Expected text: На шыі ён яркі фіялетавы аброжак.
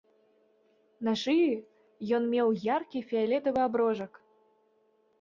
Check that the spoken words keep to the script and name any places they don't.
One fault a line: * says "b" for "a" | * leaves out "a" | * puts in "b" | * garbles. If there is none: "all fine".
* puts in "меў"